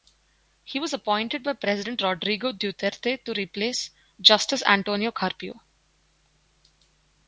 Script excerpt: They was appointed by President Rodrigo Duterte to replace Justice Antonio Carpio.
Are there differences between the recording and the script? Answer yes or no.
yes